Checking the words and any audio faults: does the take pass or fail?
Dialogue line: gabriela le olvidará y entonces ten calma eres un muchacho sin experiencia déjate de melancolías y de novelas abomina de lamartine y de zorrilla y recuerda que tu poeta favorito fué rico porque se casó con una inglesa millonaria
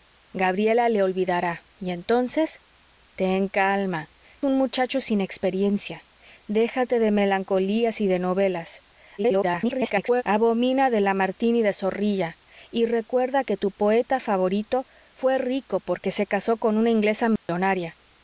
fail